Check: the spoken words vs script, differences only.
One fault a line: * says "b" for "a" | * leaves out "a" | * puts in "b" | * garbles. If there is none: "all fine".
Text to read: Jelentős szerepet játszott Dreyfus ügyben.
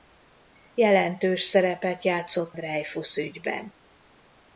all fine